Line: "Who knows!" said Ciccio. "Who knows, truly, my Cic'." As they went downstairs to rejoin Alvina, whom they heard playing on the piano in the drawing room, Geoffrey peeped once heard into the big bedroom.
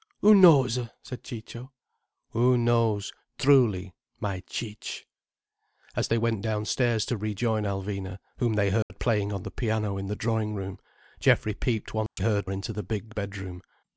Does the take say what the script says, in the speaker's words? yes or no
yes